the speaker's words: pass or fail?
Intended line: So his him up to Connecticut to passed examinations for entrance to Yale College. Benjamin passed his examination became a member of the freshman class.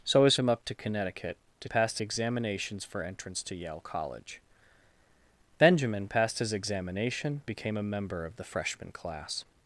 pass